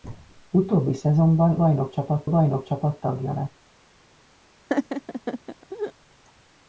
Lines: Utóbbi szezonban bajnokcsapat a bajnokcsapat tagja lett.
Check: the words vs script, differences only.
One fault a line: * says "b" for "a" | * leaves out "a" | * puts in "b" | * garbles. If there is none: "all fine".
all fine